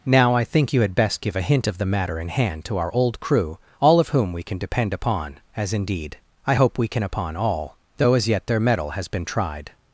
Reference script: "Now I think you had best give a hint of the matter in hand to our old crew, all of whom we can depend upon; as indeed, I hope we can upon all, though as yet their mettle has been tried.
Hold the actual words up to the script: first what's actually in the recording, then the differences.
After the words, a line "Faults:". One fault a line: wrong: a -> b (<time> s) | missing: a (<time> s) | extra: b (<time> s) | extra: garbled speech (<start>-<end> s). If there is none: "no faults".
"Now I think you had best give a hint of the matter in hand to our old crew, all of whom we can depend upon; as indeed, I hope we can upon all, though as yet their mettle has been tried.
Faults:
no faults